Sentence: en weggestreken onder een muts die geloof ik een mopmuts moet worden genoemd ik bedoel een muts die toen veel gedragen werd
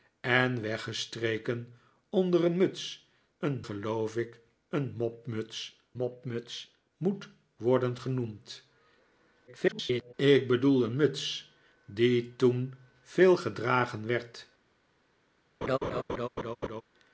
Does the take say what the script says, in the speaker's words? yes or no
no